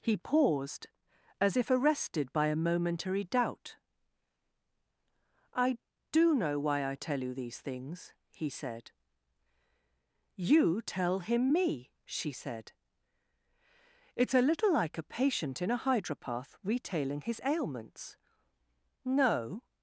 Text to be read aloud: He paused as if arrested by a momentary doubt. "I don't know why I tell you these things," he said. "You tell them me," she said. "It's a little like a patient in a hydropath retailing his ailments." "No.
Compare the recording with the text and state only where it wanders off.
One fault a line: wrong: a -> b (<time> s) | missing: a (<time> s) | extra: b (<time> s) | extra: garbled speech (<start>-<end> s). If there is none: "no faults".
wrong: don't -> do (6.1 s)
wrong: them -> him (11.2 s)